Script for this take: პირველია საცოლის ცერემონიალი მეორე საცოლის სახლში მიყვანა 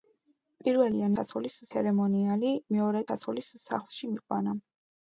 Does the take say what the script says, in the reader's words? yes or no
yes